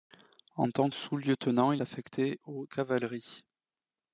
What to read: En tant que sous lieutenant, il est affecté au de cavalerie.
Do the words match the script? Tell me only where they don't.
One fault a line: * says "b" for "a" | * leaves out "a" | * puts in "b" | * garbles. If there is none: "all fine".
* leaves out "que"
* leaves out "est"
* leaves out "de"